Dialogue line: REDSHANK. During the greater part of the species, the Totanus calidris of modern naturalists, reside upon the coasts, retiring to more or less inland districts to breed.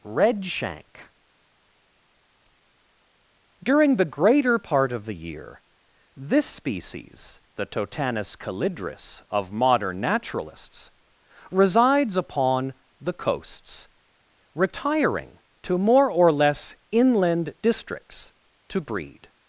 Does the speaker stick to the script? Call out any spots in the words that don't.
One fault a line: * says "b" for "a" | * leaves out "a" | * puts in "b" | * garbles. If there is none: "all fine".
* puts in "year this"
* says "resides" for "reside"